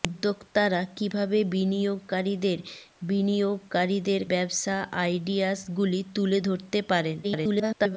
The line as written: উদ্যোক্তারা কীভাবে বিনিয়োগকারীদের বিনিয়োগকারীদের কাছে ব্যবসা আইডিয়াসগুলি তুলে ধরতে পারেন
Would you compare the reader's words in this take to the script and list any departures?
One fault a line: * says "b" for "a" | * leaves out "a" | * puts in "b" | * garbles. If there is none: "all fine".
* leaves out "কাছে"
* garbles